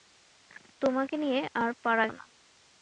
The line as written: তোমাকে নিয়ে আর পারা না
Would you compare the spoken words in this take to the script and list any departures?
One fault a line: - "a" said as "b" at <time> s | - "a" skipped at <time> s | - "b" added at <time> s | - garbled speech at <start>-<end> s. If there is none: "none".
none